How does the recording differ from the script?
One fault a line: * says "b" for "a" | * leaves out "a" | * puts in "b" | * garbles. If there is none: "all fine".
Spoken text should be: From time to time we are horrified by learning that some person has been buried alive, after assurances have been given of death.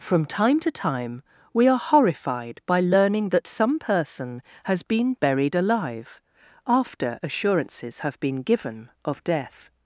all fine